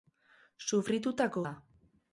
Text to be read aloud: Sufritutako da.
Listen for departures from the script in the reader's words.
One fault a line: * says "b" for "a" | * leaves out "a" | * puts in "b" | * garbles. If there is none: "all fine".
all fine